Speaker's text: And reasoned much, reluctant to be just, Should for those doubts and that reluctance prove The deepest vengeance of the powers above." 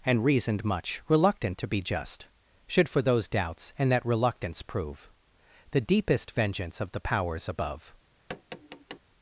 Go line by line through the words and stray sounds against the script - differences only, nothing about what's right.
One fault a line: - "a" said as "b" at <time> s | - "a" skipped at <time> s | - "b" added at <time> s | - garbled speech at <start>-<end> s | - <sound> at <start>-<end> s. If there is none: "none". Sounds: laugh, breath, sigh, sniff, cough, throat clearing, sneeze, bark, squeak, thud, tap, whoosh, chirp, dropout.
- tap at 8.3-9.0 s